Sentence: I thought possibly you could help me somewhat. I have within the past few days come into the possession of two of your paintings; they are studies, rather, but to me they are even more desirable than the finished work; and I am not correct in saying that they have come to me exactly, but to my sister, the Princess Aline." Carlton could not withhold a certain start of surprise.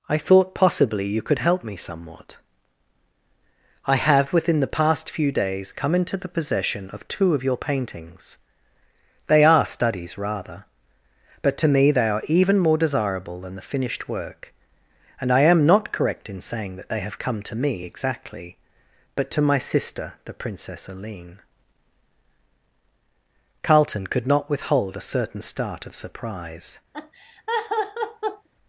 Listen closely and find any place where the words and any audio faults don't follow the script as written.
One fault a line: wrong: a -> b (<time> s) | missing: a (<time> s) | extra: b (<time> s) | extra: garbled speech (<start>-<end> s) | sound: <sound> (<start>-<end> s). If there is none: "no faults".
sound: laugh (26.9-28.5 s)